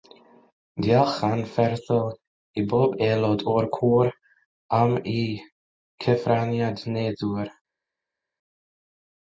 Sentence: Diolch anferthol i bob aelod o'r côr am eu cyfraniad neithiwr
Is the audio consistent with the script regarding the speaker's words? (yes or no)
yes